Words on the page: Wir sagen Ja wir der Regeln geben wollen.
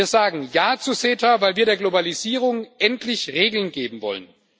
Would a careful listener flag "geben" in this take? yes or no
no